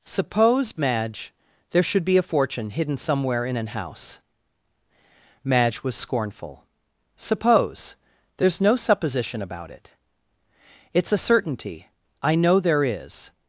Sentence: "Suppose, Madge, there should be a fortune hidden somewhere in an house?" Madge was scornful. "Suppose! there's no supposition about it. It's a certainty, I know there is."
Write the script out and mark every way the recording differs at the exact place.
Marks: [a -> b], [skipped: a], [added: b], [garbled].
"Suppose, Madge, there should be a fortune hidden somewhere in an house?" Madge was scornful. "Suppose! there's no supposition about it. It's a certainty, I know there is."